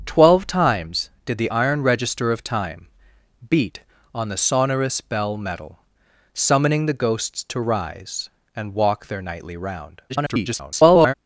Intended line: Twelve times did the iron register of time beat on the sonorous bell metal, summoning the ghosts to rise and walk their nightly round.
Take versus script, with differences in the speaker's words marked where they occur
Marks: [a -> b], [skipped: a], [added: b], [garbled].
Twelve times did the iron register of time beat on the sonorous bell metal, summoning the ghosts to rise and walk their nightly round. [garbled]